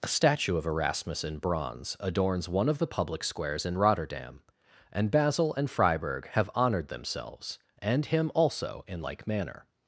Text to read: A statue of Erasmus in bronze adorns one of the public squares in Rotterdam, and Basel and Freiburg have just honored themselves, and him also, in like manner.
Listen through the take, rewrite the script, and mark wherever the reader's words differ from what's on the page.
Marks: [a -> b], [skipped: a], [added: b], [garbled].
A statue of Erasmus in bronze adorns one of the public squares in Rotterdam, and Basel and Freiburg have [skipped: just] honored themselves, and him also, in like manner.